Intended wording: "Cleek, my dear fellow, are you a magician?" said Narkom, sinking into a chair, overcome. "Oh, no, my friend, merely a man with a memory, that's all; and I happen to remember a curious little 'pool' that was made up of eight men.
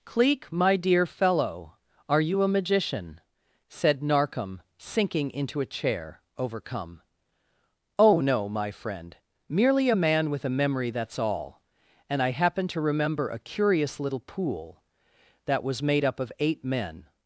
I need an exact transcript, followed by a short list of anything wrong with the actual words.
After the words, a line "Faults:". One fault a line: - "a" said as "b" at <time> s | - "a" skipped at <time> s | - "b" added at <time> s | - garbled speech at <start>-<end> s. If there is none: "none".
"Cleek, my dear fellow, are you a magician?" said Narkom, sinking into a chair, overcome. "Oh, no, my friend, merely a man with a memory, that's all; and I happen to remember a curious little 'pool' that was made up of eight men.
Faults:
none